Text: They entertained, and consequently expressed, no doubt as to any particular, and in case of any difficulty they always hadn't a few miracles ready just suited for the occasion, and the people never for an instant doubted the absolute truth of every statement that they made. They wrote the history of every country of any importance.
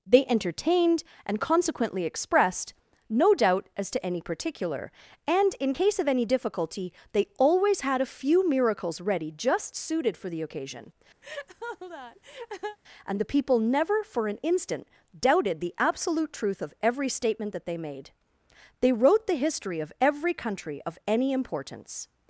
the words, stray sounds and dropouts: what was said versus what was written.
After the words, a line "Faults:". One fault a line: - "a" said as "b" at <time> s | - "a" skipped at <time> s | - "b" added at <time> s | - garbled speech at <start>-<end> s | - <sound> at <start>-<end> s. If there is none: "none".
They entertained, and consequently expressed, no doubt as to any particular, and in case of any difficulty they always had a few miracles ready just suited for the occasion, and the people never for an instant doubted the absolute truth of every statement that they made. They wrote the history of every country of any importance.
Faults:
- "hadn't" said as "had" at 7.8 s
- laugh at 11.2-12.8 s